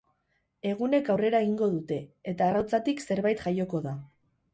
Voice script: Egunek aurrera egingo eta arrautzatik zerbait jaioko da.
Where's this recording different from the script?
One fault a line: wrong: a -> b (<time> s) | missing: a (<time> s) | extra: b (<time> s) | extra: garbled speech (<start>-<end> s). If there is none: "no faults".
extra: dute (1.7 s)